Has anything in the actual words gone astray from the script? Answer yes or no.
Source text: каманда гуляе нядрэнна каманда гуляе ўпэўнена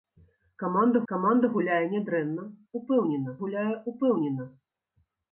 yes